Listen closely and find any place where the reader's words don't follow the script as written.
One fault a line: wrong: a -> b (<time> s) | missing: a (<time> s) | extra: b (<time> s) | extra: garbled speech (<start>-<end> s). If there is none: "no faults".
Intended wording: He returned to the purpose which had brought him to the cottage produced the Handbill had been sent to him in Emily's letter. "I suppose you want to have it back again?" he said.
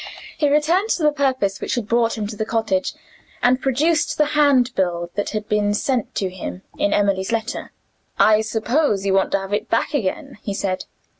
extra: and (3.4 s)
extra: that (5.1 s)